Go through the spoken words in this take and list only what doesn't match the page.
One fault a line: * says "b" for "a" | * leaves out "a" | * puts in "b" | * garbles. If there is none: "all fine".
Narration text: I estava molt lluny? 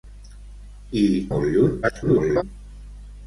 * leaves out "estava"
* garbles